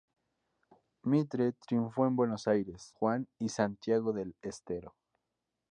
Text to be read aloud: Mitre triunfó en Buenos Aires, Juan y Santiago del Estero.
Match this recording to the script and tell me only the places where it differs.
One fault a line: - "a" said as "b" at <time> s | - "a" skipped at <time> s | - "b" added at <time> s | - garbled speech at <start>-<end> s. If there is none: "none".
none